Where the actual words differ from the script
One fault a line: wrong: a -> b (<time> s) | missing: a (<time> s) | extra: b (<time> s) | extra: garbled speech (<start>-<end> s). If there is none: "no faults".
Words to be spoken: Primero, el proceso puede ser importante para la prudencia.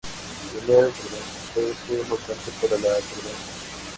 wrong: proceso -> prudencia (1.0 s)